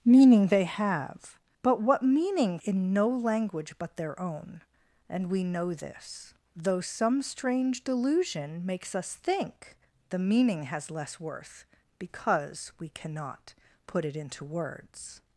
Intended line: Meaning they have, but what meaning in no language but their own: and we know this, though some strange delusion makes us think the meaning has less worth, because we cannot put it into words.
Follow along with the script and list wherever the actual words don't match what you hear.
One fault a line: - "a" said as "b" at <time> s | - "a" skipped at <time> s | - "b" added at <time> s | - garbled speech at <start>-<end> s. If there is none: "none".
none